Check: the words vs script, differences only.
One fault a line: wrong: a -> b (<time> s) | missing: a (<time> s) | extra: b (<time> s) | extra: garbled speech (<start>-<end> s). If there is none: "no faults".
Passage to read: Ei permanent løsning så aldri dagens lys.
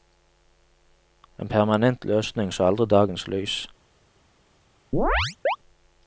wrong: Ei -> En (1.4 s)